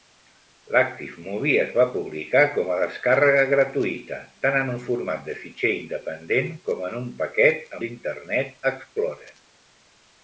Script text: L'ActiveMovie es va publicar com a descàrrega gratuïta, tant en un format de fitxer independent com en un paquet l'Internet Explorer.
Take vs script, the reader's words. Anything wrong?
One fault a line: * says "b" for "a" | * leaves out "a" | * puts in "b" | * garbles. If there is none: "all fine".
all fine